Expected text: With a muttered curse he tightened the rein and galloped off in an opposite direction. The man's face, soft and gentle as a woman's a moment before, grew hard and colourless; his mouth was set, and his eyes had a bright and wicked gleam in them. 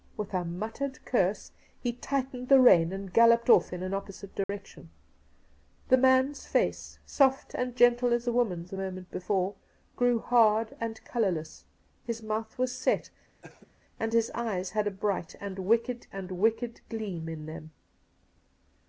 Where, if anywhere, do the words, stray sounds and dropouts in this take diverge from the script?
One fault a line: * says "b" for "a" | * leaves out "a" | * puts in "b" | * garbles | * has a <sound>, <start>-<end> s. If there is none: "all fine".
* has a dropout, 4.4-4.5 s
* has a cough, 13.4-13.7 s
* puts in "and wicked"